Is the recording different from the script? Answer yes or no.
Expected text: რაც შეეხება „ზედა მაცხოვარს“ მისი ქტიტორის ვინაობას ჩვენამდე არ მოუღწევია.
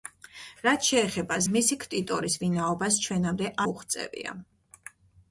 yes